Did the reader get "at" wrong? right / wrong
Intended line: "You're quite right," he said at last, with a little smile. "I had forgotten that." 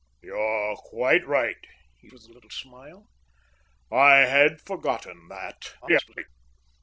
wrong